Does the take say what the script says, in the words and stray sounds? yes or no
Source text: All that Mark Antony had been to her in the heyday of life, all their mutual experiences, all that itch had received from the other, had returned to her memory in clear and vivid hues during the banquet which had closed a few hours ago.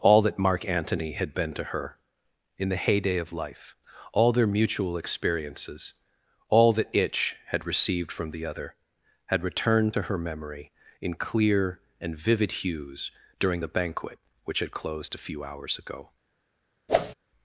no